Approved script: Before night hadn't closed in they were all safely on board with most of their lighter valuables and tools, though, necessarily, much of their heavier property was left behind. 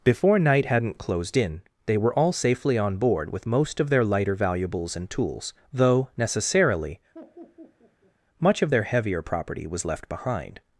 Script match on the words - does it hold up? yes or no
yes